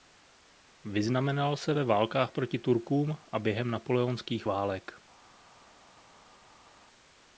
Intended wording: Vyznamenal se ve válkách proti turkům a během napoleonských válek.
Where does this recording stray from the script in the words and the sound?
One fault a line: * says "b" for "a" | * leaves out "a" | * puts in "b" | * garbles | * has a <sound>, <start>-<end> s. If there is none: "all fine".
all fine